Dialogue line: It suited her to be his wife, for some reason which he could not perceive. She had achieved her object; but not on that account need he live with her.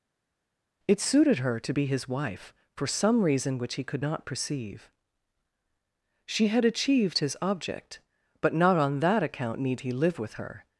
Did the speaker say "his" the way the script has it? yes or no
yes